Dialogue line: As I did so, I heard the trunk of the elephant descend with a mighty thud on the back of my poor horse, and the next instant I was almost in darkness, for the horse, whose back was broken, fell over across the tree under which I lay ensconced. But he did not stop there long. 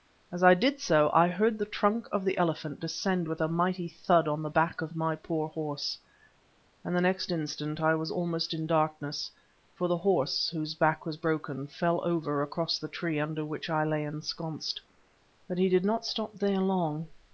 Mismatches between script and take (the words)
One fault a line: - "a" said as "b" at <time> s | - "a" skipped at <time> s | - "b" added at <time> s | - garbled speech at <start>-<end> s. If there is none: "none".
none